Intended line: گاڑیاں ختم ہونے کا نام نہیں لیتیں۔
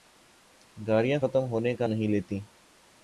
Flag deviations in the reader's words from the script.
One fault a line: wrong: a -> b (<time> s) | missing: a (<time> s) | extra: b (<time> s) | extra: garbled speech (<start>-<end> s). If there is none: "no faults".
missing: نام (1.9 s)